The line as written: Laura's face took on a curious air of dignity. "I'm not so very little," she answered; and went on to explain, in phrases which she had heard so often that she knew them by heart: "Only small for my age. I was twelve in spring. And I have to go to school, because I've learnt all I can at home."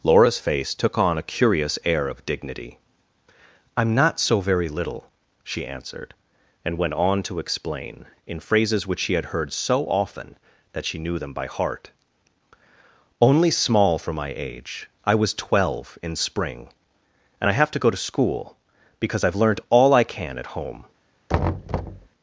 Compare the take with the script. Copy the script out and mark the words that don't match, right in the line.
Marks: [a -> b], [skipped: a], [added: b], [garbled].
Laura's face took on a curious air of dignity. "I'm not so very little," she answered; and went on to explain, in phrases which she had heard so often that she knew them by heart: "Only small for my age. I was twelve in spring. And I have to go to school, because I've learnt all I can at home."